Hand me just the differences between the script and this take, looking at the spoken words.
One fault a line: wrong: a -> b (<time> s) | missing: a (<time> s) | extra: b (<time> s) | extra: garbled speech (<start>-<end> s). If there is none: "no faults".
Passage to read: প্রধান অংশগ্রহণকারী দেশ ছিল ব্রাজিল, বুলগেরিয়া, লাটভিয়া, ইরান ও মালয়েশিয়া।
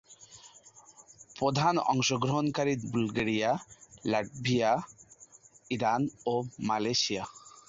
missing: দেশ ছিল ব্রাজিল (2.7 s)